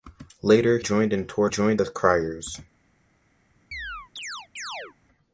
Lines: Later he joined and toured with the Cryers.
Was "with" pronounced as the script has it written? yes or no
no